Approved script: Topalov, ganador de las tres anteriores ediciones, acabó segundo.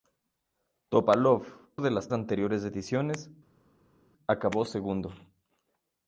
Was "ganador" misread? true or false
true